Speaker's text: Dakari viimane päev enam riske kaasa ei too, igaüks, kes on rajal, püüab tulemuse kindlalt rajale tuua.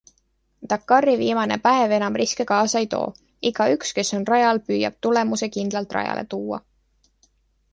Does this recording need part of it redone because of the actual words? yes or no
no